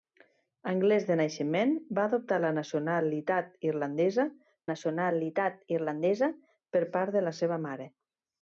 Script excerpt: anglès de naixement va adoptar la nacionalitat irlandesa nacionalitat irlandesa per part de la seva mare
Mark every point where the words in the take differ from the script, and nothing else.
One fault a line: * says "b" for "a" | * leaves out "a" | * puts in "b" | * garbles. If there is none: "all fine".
all fine